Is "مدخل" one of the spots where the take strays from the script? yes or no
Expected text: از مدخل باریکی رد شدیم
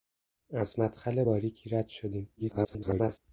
no